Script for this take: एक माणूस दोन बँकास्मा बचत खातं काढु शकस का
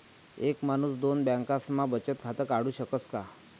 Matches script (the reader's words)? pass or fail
pass